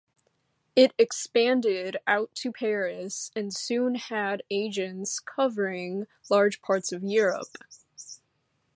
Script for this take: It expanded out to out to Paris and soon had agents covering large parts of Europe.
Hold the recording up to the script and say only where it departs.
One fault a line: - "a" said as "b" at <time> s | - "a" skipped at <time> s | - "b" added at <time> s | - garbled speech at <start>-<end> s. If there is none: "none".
- "out to" skipped at 2.5 s